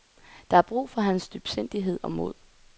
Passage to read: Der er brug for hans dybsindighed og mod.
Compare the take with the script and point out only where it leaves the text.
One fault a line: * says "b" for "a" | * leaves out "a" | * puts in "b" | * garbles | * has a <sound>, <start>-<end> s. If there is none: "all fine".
all fine